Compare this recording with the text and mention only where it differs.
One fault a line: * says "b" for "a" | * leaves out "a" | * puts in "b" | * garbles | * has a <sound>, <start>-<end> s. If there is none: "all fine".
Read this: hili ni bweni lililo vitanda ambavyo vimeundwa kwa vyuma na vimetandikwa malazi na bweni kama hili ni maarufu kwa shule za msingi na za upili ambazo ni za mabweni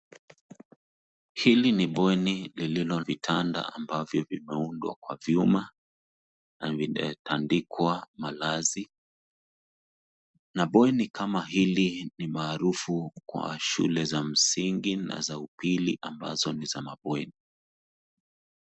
all fine